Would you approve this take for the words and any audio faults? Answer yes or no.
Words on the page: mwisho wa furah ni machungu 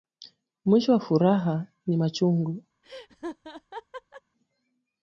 no